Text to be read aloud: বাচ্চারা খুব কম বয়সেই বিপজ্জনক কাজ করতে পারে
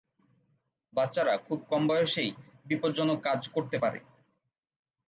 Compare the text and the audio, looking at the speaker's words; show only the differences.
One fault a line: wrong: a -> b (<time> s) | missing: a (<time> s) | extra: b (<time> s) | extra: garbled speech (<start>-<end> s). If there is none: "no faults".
no faults